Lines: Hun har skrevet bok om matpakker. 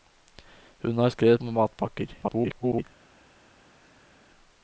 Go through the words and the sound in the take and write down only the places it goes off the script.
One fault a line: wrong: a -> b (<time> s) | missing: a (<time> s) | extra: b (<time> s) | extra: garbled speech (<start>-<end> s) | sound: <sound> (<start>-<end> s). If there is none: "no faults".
missing: bok (1.4 s)
extra: garbled speech (2.2-2.9 s)